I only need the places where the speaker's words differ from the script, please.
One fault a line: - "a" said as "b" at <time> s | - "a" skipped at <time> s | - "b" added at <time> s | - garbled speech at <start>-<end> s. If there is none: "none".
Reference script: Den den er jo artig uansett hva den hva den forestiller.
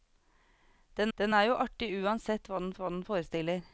none